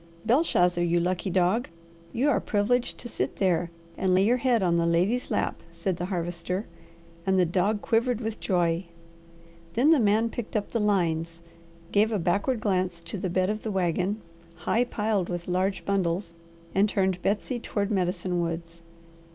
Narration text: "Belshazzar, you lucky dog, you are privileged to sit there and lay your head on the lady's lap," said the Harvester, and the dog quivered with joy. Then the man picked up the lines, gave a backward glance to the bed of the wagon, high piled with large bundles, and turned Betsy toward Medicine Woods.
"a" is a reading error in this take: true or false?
false